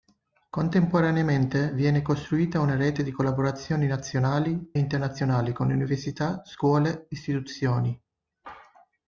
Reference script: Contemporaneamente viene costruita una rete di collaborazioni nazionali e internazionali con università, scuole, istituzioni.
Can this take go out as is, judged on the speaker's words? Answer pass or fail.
fail